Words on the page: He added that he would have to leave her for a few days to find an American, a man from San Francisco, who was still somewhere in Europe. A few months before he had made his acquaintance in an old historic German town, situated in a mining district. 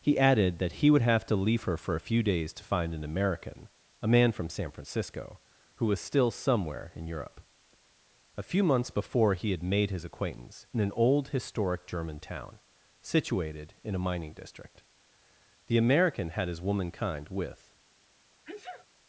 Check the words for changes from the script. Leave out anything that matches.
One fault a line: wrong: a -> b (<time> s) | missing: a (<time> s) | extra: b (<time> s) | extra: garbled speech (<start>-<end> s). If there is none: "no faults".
extra: The American had his womankind with (15.7 s)